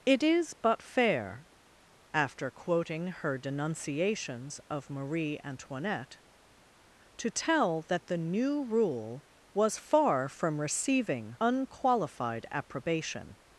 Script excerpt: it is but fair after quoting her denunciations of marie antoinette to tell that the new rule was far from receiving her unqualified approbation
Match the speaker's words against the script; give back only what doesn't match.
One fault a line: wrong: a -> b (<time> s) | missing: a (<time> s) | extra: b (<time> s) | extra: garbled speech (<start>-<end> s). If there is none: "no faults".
missing: her (11.4 s)